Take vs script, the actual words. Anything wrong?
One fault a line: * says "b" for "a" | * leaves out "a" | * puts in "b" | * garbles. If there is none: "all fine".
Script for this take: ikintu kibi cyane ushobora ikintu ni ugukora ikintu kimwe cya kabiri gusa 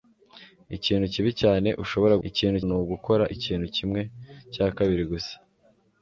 all fine